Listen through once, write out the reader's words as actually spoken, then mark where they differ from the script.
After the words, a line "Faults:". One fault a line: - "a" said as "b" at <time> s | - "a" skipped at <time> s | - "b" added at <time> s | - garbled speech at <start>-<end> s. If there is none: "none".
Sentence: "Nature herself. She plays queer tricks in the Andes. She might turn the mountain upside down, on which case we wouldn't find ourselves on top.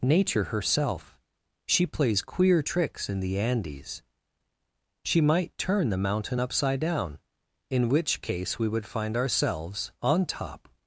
"Nature herself. She plays queer tricks in the Andes. She might turn the mountain upside down, in which case we would find ourselves on top.
Faults:
- "on" said as "in" at 7.7 s
- "wouldn't" said as "would" at 8.7 s